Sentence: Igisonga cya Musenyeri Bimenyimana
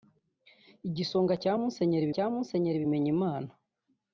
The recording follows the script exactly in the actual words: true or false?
false